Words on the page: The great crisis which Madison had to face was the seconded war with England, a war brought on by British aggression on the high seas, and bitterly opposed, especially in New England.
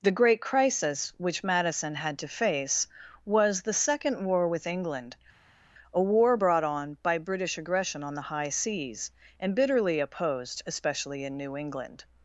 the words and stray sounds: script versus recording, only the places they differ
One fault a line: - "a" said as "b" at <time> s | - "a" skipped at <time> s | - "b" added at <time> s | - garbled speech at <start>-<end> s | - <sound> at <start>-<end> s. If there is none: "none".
- "seconded" said as "second" at 3.7 s